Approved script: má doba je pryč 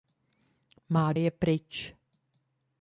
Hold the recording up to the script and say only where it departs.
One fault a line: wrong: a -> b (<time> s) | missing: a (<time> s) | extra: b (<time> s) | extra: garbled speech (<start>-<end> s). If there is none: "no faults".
missing: doba (1.1 s)